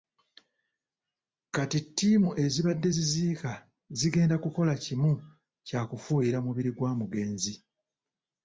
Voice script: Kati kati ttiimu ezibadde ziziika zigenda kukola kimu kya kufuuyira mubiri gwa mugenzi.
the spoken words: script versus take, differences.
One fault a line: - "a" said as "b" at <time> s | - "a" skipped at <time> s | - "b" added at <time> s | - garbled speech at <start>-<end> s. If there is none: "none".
- "kati" skipped at 1.8 s